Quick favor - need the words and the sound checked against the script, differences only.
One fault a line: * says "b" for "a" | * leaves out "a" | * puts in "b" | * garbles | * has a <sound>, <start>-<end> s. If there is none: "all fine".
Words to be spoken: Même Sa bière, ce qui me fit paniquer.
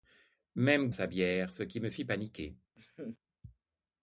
* has a laugh, 2.8-3.2 s